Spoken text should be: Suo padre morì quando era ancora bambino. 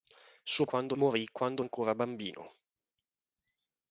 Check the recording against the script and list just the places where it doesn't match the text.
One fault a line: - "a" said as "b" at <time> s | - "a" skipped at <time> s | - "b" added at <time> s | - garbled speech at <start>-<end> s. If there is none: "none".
- "padre" said as "quando" at 0.6 s
- "era" skipped at 1.6 s